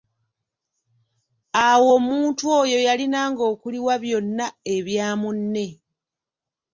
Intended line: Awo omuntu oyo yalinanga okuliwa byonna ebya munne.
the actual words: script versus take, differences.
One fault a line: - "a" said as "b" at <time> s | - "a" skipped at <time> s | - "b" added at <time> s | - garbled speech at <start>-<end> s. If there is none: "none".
none